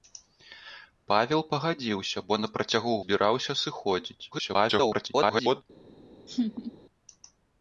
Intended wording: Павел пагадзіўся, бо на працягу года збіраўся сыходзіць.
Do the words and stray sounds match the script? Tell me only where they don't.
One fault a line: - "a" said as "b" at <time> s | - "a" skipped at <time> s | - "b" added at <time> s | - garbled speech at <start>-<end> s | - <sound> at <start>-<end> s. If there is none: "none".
- "года" skipped at 3.0 s
- garbled speech at 4.3-5.6 s
- laugh at 6.3-6.7 s